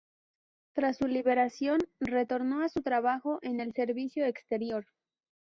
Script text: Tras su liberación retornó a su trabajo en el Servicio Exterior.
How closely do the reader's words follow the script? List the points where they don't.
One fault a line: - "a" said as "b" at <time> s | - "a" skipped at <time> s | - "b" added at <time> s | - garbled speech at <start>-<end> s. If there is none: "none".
none